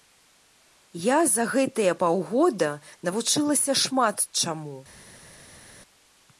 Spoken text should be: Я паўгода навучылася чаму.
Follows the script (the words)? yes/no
no